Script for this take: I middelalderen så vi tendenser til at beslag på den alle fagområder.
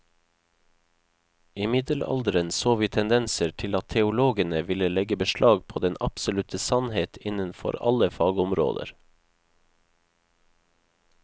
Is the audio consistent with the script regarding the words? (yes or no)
no